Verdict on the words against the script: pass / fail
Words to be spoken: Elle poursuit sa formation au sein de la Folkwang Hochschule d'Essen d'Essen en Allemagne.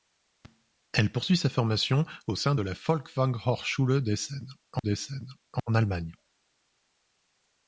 pass